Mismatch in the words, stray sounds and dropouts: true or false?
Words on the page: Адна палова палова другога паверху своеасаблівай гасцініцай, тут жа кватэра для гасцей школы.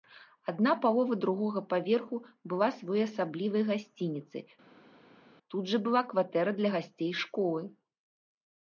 true